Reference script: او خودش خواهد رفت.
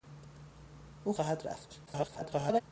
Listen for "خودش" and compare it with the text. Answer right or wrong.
wrong